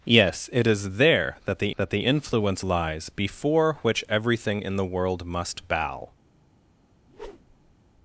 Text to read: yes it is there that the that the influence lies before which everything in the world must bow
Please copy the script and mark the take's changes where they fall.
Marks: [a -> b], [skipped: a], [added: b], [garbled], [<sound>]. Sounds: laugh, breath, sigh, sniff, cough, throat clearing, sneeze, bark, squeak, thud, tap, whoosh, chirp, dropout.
yes it is there that the that the influence lies before which everything in the world must bow [whoosh]